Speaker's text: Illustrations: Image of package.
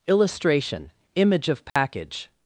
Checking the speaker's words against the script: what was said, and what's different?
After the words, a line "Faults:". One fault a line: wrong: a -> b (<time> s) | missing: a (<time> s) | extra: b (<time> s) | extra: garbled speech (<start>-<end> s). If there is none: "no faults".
Illustration: Image of package.
Faults:
wrong: Illustrations -> Illustration (0.1 s)